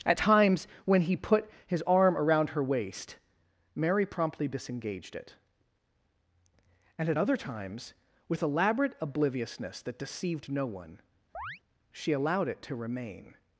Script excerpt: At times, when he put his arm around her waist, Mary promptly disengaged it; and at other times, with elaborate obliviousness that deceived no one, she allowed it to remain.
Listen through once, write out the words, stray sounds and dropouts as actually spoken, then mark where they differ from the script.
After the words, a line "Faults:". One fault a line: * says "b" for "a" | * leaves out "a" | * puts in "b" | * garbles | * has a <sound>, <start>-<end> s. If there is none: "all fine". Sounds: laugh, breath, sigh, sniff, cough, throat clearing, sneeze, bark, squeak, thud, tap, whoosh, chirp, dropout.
At times, when he put his arm around her waist, Mary promptly disengaged it; and at other times, with elaborate obliviousness that deceived no one, she allowed it to remain.
Faults:
* has a chirp, 11.3-11.6 s